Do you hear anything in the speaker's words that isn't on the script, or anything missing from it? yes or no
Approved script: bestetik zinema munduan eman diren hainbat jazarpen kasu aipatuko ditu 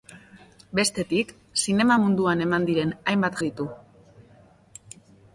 yes